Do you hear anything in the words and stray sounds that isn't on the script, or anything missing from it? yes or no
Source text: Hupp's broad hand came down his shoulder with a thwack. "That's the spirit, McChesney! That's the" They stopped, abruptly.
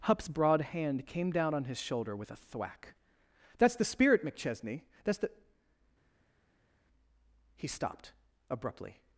yes